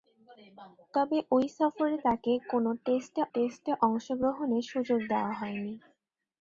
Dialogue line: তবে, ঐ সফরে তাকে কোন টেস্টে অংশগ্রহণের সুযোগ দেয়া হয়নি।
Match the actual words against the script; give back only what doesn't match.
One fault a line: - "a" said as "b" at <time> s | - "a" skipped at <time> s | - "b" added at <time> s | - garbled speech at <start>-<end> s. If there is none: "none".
- "টেস্টে" added at 3.3 s